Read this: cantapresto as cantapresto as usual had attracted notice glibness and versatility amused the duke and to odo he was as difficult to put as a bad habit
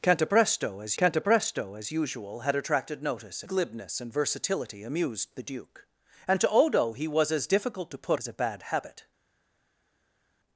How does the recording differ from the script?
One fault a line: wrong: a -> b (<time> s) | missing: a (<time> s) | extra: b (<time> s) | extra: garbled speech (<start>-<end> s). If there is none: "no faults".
no faults